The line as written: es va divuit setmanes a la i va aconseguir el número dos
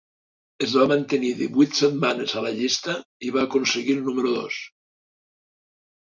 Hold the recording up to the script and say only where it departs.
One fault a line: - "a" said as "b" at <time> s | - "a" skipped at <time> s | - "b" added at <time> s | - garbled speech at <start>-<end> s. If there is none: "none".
- "mantenir" added at 0.9 s
- "llista" added at 2.6 s